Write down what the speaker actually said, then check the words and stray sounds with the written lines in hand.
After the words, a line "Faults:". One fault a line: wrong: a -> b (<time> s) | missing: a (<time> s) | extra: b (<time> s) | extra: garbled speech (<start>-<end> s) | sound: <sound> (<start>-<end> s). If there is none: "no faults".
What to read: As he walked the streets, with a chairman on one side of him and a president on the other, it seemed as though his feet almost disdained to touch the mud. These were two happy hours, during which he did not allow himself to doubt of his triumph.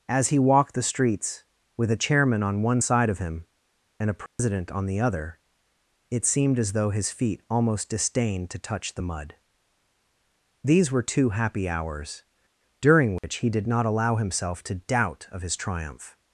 As he walked the streets, with a chairman on one side of him and a president on the other, it seemed as though his feet almost disdained to touch the mud. These were two happy hours, during which he did not allow himself to doubt of his triumph.
Faults:
sound: dropout (4.3-4.4 s)
sound: dropout (13.2-13.2 s)